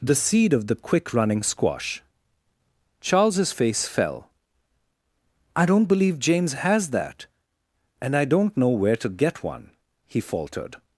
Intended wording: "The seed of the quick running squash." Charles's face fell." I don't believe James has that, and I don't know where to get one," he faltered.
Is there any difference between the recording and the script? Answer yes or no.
no